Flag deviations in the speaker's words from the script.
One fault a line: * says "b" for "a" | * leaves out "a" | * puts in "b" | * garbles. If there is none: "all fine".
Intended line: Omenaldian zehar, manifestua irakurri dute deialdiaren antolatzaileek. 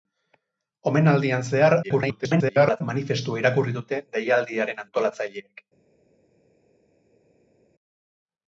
* garbles